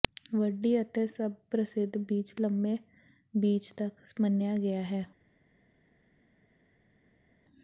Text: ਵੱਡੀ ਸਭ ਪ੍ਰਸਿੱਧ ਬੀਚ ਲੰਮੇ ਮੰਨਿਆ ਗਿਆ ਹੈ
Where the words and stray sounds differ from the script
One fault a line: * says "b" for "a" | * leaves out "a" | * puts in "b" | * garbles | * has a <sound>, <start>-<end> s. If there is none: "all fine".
* puts in "ਅਤੇ"
* puts in "ਬੀਚ ਤੱਕ"